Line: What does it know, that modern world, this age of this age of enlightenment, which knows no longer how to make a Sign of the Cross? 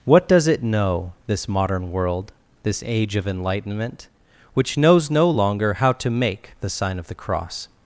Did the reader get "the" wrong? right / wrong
right